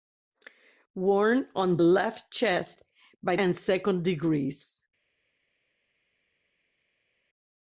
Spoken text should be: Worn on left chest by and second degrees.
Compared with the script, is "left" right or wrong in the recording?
right